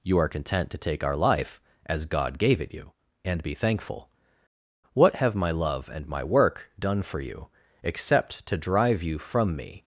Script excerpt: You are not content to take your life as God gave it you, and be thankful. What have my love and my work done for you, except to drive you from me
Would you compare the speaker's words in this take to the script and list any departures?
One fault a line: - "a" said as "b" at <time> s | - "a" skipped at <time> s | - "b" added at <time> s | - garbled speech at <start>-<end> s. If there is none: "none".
- "not" skipped at 0.3 s
- "your" said as "our" at 1.0 s